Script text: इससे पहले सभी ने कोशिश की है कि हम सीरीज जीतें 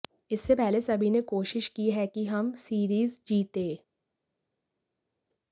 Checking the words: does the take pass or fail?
pass